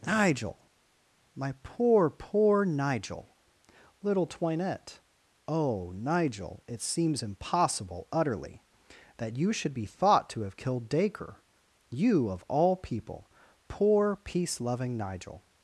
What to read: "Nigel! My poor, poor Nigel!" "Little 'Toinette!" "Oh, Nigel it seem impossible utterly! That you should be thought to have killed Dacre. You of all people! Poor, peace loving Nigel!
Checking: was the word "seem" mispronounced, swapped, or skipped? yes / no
yes